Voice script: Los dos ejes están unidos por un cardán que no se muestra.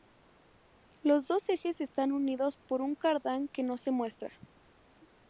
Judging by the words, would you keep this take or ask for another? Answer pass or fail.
pass